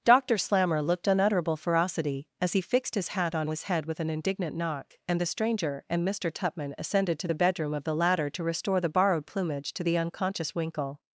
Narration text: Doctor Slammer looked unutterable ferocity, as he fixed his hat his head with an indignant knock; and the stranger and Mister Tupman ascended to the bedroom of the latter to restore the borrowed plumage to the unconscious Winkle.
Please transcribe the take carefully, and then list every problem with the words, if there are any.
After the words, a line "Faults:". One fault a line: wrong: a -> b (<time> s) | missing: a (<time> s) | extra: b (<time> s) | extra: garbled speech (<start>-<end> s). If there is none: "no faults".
Doctor Slammer looked unutterable ferocity, as he fixed his hat on his head with an indignant knock; and the stranger and Mister Tupman ascended to the bedroom of the latter to restore the borrowed plumage to the unconscious Winkle.
Faults:
extra: on (3.4 s)